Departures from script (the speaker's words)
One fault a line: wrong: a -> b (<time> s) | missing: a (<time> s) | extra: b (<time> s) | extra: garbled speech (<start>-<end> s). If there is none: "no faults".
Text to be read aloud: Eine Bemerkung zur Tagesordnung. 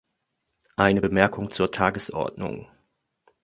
no faults